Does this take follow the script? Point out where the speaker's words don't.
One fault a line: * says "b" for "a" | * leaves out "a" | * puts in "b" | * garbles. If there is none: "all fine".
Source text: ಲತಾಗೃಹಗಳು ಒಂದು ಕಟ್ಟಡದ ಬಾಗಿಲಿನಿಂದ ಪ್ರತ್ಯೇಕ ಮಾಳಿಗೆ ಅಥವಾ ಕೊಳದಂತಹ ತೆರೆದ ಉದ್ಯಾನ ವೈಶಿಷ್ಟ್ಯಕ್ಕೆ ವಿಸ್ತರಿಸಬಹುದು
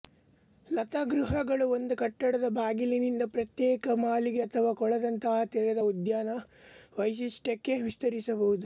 all fine